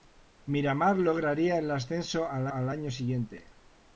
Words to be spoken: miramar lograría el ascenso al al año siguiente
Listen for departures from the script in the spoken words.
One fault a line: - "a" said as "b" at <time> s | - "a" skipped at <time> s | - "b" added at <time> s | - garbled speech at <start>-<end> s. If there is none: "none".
none